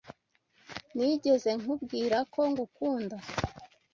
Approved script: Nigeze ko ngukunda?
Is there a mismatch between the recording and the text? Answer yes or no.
yes